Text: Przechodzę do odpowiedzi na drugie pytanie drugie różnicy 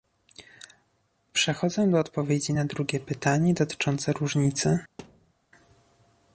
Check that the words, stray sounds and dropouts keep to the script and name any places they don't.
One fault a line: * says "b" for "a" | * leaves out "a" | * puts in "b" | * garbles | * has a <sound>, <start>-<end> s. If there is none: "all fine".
* says "dotyczące" for "drugie"
* has a thud, 5.0-5.3 s